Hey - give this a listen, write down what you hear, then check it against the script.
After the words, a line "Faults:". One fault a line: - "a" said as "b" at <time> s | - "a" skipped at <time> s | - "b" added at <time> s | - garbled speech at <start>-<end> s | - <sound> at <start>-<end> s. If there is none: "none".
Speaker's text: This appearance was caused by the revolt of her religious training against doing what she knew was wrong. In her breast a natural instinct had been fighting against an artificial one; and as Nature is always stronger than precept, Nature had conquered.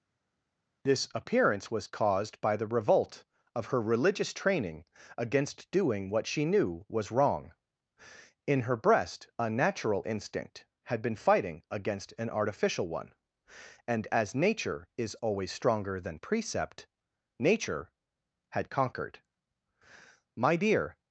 This appearance was caused by the revolt of her religious training against doing what she knew was wrong. In her breast a natural instinct had been fighting against an artificial one; and as Nature is always stronger than precept, Nature had conquered. 'My dear
Faults:
- "My dear" added at 20.3 s